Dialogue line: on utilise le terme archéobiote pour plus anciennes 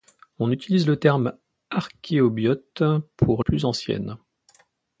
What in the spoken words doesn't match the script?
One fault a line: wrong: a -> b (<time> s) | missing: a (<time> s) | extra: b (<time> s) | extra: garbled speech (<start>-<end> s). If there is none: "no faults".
no faults